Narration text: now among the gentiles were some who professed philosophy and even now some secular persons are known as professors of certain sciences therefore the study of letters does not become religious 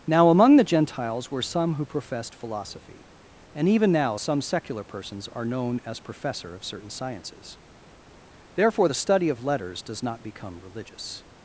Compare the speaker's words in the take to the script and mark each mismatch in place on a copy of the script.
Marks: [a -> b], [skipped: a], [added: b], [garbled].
now among the gentiles were some who professed philosophy and even now some secular persons are known as [professors -> professor] of certain sciences therefore the study of letters does not become religious